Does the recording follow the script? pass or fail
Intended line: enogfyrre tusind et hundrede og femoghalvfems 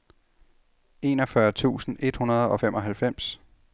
pass